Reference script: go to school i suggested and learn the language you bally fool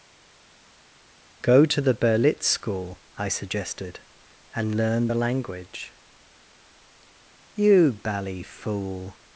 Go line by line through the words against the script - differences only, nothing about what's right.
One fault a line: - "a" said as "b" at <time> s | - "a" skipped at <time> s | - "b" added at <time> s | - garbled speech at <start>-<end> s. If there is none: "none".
- "the berlitz" added at 1.8 s